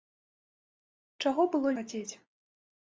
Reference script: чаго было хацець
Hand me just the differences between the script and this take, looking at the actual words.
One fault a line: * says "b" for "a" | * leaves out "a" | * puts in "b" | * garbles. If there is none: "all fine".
all fine